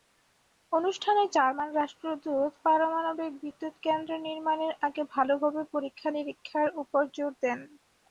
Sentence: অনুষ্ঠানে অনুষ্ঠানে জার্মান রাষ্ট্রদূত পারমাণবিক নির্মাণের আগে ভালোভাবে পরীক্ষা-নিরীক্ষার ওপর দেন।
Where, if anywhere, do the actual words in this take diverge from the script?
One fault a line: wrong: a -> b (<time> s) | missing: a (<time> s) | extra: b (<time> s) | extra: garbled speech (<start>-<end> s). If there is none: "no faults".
missing: অনুষ্ঠানে (1.2 s)
extra: বিদ্যুৎকেন্দ্র (3.4 s)
extra: জোর (7.2 s)